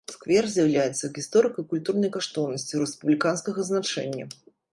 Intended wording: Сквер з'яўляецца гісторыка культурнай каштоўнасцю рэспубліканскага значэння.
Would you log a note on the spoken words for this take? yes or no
no